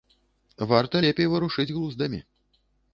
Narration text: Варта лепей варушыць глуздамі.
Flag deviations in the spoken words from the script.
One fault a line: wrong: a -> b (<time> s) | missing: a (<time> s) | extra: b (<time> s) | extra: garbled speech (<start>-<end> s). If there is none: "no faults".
no faults